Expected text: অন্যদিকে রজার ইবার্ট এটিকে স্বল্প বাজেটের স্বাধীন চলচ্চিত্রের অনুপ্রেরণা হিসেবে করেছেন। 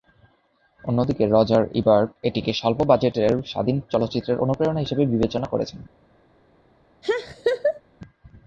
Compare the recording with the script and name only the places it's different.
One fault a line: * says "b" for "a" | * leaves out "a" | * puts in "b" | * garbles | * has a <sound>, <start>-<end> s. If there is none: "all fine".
* puts in "বিবেচনা"
* has a laugh, 7.0-7.8 s